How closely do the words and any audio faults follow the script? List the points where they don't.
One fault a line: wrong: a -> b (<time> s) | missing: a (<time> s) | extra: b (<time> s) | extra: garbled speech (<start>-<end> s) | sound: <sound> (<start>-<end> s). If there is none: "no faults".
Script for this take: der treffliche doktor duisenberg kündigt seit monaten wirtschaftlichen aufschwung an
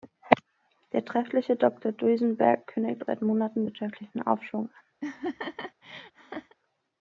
sound: laugh (5.0-6.6 s)